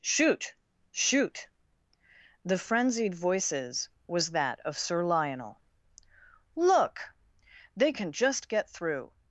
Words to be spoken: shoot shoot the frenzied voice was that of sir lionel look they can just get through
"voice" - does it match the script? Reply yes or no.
no